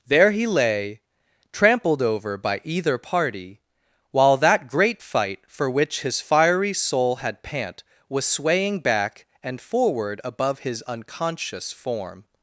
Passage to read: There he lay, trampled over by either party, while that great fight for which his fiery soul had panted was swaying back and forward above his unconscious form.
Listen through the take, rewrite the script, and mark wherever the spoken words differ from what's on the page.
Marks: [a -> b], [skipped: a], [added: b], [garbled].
There he lay, trampled over by either party, while that great fight for which his fiery soul had [panted -> pant] was swaying back and forward above his unconscious form.